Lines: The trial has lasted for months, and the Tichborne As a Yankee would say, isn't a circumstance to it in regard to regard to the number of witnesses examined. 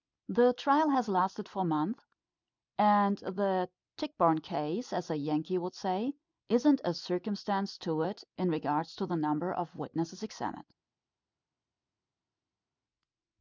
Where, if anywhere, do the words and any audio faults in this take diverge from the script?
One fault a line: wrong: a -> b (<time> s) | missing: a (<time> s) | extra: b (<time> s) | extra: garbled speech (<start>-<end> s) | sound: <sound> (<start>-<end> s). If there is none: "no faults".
extra: Case (4.4 s)
missing: regard to (9.1 s)